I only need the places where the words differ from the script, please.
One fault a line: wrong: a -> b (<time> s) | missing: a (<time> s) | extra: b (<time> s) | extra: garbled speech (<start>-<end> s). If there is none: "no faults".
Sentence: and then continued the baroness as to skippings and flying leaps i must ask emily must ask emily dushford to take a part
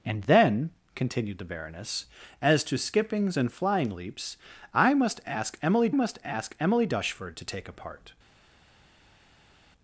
no faults